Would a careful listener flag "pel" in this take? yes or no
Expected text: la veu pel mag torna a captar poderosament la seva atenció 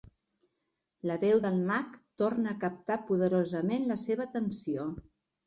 yes